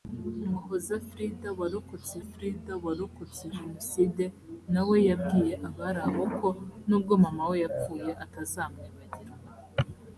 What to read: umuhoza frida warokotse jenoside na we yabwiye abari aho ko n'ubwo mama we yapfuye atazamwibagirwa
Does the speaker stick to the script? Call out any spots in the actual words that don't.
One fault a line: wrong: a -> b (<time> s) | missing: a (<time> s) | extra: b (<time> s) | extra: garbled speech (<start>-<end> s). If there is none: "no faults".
extra: frida warokotse (2.3 s)